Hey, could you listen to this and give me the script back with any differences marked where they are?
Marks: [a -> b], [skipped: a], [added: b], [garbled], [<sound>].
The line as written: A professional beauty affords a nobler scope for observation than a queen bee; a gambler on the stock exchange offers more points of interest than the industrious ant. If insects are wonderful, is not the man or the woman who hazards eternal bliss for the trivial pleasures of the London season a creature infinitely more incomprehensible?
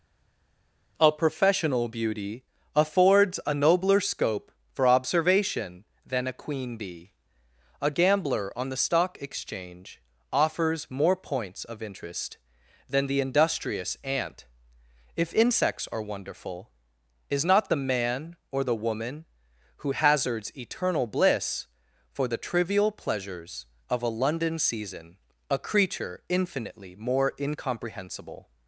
A professional beauty affords a nobler scope for observation than a queen bee; a gambler on the stock exchange offers more points of interest than the industrious ant. If insects are wonderful, is not the man or the woman who hazards eternal bliss for the trivial pleasures of [the -> a] London season a creature infinitely more incomprehensible?